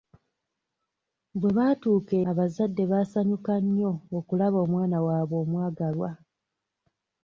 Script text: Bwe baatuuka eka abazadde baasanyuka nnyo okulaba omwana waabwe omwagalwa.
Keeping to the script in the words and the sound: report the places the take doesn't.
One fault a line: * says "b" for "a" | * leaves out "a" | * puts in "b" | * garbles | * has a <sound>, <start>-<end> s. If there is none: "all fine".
* leaves out "eka"